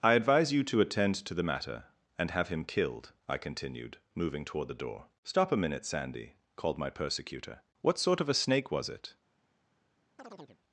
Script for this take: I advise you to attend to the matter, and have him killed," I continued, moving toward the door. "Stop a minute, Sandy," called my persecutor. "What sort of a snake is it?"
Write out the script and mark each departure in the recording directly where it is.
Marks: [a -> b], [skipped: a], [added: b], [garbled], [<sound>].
I advise you to attend to the matter, and have him killed," I continued, moving toward the door. "Stop a minute, Sandy," called my persecutor. "What sort of a snake [is -> was] it?" [chirp]